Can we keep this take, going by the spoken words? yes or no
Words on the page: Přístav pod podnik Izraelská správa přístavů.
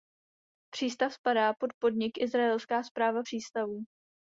no